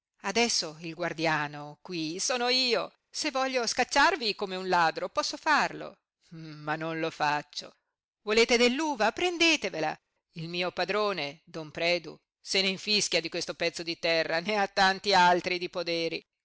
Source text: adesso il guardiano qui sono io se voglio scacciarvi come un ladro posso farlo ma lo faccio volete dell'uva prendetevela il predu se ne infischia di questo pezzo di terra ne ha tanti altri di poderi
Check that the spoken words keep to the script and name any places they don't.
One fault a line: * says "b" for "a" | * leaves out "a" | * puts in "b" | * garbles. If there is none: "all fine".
* puts in "non"
* puts in "mio padrone don"